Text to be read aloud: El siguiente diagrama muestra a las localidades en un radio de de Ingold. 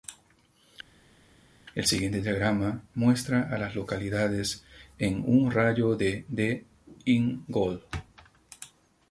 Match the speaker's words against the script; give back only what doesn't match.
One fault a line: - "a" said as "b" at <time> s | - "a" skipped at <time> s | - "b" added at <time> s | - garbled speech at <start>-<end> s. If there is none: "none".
none